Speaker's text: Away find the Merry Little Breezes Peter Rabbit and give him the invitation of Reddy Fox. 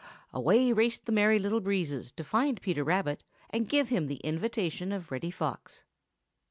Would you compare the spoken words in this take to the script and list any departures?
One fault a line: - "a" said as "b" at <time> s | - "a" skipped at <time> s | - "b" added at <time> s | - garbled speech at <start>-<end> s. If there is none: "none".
- "find" said as "raced" at 0.7 s
- "to find" added at 2.1 s